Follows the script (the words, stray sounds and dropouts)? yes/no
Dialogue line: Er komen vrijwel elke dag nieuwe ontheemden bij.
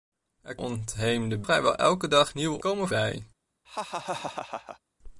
no